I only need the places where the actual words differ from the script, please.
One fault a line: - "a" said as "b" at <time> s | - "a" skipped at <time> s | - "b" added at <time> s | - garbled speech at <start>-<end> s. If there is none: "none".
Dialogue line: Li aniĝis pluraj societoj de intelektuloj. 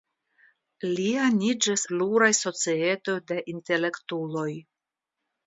none